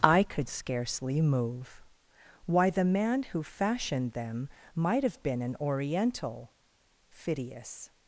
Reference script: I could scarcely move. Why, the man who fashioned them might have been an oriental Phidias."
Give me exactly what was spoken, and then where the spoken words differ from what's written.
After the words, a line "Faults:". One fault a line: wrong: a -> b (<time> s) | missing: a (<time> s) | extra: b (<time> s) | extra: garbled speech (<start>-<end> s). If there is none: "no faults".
I could scarcely move. Why, the man who fashioned them might have been an oriental Phidias."
Faults:
no faults